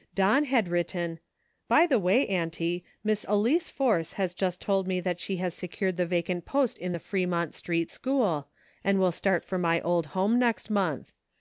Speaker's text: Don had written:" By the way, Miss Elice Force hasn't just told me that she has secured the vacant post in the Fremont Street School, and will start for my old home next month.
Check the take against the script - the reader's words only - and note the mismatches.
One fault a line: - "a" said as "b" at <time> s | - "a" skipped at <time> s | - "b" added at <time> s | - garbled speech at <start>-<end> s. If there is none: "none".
- "Auntie" added at 2.3 s
- "hasn't" said as "has" at 4.1 s